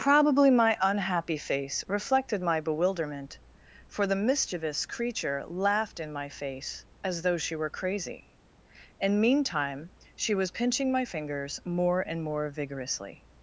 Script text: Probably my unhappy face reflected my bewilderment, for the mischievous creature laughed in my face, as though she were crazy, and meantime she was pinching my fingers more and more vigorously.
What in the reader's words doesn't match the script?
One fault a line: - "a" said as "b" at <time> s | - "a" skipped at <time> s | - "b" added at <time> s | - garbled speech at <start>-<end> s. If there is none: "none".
none